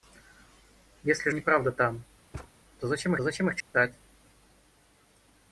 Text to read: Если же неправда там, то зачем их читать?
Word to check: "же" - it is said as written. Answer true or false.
false